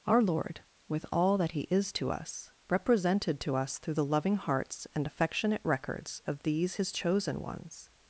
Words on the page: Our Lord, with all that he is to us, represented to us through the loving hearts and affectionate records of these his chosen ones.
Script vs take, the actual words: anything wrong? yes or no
no